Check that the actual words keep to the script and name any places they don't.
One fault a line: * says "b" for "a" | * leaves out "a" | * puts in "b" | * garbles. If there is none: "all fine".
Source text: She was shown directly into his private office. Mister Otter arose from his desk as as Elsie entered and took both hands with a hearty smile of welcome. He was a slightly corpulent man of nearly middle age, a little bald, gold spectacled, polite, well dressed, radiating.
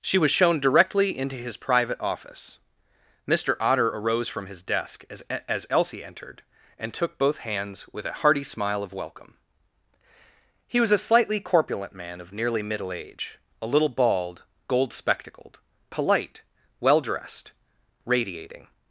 all fine